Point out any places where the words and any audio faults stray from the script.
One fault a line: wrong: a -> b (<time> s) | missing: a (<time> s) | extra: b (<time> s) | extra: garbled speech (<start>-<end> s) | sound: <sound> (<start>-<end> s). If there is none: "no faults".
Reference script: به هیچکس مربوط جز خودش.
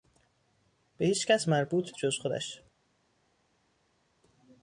no faults